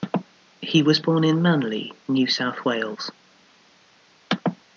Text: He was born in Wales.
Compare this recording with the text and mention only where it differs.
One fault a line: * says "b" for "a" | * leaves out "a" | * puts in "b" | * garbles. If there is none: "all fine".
* puts in "Manly New South"